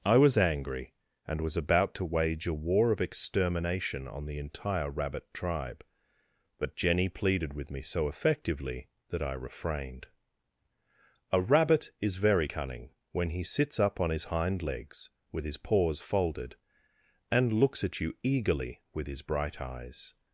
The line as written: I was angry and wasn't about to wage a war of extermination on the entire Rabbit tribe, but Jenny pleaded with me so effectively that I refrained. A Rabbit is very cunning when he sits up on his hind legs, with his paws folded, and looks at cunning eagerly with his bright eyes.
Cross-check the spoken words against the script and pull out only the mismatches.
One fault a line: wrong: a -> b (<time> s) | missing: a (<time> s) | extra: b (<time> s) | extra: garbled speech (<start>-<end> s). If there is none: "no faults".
wrong: wasn't -> was (1.4 s)
wrong: cunning -> you (18.0 s)